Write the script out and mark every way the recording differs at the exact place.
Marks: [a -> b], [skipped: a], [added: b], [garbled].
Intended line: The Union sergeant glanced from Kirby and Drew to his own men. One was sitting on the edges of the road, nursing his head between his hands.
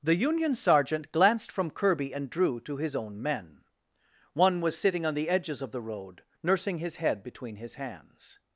The Union sergeant glanced from Kirby and Drew to his own men. One was sitting on the edges of the road, nursing his head between his hands.